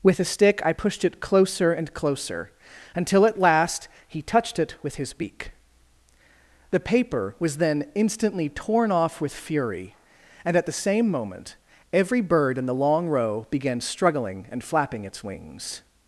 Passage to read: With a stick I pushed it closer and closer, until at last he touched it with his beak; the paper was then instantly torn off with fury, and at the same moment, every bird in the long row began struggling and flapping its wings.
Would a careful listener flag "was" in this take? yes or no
no